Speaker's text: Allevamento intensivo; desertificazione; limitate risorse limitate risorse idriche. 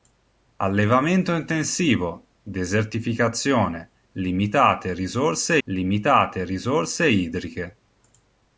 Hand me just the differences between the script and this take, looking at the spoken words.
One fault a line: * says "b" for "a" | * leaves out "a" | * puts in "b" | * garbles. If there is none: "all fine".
all fine